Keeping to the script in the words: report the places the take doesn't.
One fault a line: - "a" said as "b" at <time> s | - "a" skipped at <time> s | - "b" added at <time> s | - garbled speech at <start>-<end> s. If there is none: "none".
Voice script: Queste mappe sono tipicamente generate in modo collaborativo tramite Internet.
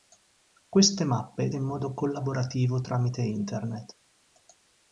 - "sono tipicamente generate" skipped at 1.5 s